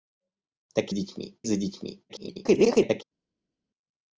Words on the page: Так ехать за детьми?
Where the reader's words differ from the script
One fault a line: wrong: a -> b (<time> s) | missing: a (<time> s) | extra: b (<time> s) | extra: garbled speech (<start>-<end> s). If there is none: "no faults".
wrong: ехать -> детьми (0.9 s)
extra: garbled speech (2.1-3.0 s)